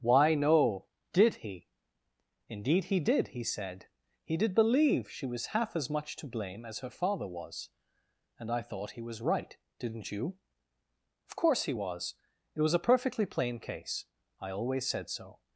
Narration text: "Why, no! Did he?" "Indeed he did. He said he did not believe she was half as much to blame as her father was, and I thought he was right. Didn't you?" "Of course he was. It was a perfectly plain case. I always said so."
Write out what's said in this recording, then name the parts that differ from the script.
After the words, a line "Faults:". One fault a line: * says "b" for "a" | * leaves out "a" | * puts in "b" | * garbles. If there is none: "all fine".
"Why, no! Did he?" "Indeed he did. He said he did believe she was half as much to blame as her father was, and I thought he was right. Didn't you?" "Of course he was. It was a perfectly plain case. I always said so."
Faults:
* leaves out "not"